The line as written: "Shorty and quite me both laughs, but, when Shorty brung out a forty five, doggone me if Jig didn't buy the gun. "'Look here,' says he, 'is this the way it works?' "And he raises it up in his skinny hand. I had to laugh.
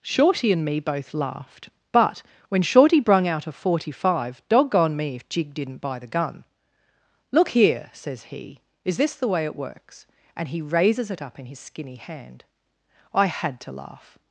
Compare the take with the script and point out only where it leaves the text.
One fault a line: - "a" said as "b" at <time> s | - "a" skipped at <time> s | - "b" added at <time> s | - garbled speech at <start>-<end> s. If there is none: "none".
- "quite" skipped at 0.7 s
- "laughs" said as "laughed" at 1.1 s